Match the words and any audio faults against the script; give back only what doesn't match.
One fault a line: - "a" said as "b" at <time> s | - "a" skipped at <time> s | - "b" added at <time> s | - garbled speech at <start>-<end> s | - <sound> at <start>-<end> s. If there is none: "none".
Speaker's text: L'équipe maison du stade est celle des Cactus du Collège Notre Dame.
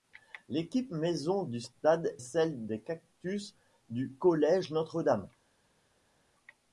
- "est" skipped at 2.2 s